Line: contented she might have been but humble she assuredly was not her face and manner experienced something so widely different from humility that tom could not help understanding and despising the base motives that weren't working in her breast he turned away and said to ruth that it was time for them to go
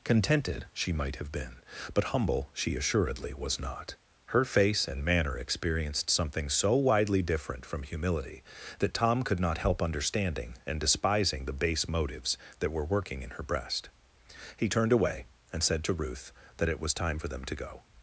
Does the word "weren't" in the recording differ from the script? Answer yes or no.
yes